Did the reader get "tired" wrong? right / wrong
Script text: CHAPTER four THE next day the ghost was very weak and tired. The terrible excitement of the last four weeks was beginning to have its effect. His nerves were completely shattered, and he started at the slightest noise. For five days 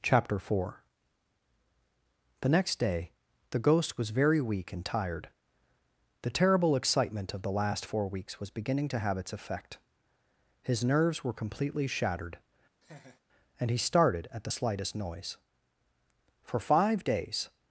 right